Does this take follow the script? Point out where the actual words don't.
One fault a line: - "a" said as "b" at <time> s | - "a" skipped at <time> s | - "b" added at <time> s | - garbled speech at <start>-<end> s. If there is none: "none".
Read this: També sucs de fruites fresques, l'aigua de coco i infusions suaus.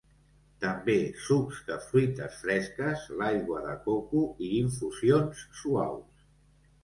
none